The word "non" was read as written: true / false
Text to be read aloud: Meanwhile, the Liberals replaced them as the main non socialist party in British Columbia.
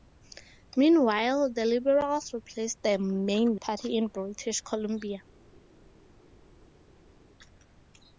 false